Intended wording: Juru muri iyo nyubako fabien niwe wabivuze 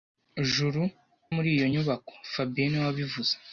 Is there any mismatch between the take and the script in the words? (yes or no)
no